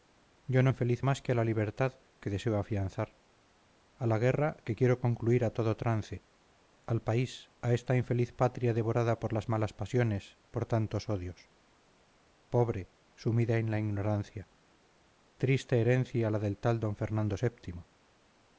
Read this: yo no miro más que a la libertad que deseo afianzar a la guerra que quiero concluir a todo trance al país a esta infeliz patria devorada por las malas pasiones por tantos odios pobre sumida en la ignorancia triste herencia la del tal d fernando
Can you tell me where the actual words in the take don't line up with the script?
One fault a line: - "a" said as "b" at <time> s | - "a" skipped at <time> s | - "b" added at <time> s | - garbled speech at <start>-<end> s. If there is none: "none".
- "miro" said as "infeliz" at 0.7 s